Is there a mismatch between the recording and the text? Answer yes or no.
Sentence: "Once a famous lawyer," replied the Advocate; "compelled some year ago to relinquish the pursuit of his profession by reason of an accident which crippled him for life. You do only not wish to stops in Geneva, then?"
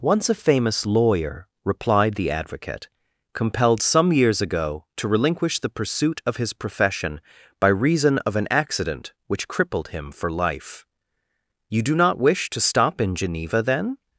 yes